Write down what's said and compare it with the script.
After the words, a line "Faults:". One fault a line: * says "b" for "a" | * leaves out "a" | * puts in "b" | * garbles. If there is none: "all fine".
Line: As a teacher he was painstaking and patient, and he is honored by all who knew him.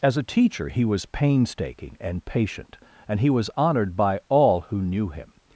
As a teacher he was painstaking and patient, and he was honored by all who knew him.
Faults:
* says "was" for "is"